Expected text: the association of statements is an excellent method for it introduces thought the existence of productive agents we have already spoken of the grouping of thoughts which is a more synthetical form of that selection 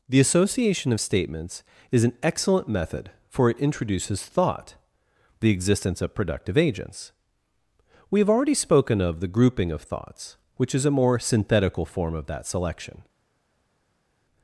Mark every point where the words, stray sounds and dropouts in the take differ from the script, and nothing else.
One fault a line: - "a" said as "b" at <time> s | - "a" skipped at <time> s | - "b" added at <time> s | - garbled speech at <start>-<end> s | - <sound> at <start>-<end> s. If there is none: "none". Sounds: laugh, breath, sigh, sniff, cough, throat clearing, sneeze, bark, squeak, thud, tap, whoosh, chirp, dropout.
none